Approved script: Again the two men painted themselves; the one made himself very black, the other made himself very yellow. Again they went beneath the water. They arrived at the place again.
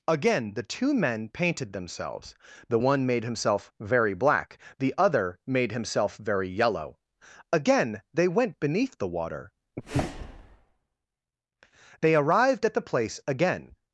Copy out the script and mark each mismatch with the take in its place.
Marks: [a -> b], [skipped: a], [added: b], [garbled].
Again the two men painted themselves; the one made himself very black, the other made himself very yellow. Again they went beneath the water. They arrived at the place again.